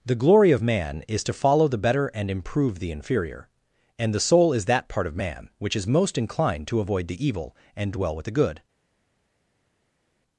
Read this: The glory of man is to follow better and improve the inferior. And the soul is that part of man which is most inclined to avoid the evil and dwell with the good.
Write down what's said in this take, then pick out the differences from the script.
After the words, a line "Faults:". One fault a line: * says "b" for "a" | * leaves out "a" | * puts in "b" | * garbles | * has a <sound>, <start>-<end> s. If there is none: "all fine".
The glory of man is to follow the better and improve the inferior. And the soul is that part of man which is most inclined to avoid the evil and dwell with the good.
Faults:
* puts in "the"